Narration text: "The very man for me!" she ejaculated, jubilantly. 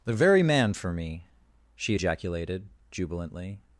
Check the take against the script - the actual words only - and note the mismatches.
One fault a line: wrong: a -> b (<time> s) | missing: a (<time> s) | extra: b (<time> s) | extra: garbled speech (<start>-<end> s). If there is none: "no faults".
no faults